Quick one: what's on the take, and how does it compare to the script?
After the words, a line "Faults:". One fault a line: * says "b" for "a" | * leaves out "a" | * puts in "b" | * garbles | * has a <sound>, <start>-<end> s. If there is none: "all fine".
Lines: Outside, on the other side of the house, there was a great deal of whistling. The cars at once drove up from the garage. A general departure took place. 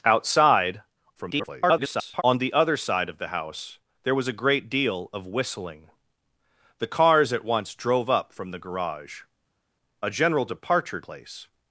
Outside, [garbled] on the other side of the house, there was a great deal of whistling. The cars at once drove up from the garage. A general departure place.
Faults:
* garbles
* leaves out "took"